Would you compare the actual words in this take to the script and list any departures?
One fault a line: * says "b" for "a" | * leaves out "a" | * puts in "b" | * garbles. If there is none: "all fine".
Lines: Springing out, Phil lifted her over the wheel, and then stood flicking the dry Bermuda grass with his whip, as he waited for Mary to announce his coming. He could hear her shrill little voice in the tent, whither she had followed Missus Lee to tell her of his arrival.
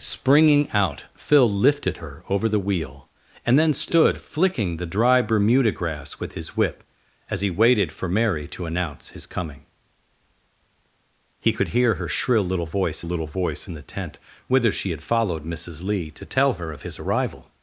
* puts in "little voice"